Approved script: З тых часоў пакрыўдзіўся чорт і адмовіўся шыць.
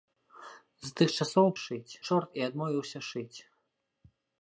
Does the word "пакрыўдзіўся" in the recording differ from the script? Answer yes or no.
yes